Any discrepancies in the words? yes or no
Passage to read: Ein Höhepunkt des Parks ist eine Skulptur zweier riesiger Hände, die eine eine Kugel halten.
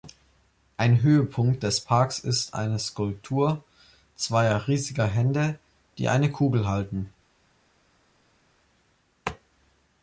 yes